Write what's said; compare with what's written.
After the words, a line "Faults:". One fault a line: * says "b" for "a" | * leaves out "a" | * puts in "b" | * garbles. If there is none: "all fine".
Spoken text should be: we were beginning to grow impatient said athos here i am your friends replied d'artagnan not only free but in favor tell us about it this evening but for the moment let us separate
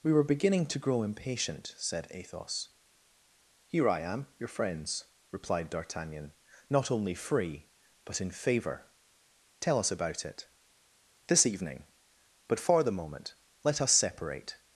we were beginning to grow impatient said athos here i am your friends replied d'artagnan not only free but in favor tell us about it this evening but for the moment let us separate
Faults:
all fine